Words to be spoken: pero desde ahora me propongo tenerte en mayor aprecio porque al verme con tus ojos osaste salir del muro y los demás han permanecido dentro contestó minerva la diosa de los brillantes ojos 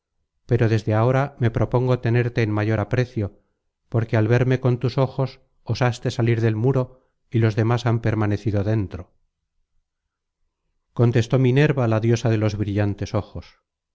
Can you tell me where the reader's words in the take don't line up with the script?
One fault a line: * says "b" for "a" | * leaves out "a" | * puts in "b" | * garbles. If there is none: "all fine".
all fine